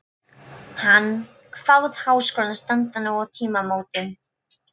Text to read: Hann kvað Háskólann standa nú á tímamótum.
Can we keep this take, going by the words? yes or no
yes